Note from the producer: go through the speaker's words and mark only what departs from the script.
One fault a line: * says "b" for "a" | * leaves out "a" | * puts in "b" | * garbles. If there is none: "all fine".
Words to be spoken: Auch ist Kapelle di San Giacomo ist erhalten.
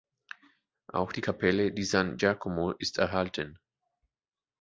* says "die" for "ist"